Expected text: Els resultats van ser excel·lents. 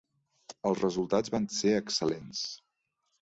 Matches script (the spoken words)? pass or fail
pass